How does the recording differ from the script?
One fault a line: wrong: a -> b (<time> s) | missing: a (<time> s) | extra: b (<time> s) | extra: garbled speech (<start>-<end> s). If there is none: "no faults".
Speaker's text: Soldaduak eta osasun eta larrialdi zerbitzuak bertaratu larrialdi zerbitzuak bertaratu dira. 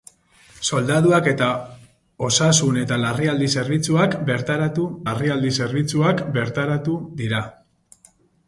no faults